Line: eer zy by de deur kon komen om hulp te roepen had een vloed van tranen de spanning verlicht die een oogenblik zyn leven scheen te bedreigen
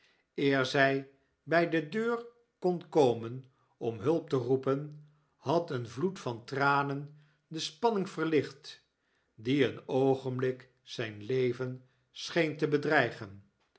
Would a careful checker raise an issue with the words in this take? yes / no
no